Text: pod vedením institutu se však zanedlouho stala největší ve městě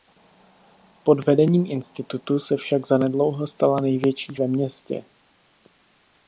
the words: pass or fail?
pass